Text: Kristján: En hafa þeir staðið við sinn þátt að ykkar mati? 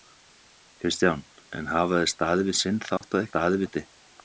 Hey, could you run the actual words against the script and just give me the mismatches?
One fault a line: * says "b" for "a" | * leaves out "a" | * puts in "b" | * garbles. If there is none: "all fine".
* says "staðið" for "ykkar"